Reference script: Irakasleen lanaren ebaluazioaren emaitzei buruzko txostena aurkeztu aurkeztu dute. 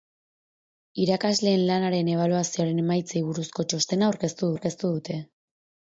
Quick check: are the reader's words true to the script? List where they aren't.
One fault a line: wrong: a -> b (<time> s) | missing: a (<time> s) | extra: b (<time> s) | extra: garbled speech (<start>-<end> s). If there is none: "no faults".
no faults